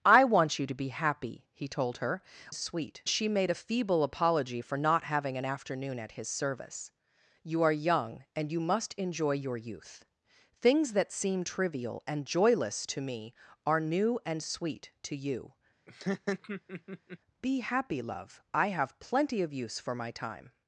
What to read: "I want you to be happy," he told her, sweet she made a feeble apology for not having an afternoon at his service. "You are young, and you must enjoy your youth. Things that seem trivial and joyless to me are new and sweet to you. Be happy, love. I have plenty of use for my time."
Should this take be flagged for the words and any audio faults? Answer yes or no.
yes